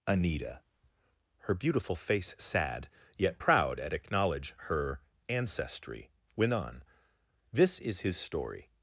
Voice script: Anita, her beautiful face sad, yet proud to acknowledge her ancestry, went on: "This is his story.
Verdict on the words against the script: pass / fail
fail